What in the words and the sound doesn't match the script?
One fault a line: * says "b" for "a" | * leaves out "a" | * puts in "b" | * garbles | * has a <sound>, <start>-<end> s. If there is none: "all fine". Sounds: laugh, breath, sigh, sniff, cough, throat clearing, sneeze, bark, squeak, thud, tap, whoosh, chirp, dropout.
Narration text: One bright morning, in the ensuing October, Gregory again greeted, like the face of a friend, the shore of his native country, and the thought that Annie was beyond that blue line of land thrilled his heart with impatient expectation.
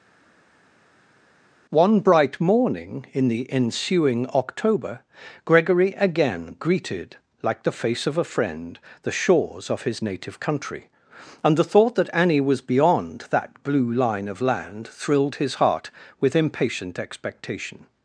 * says "shores" for "shore"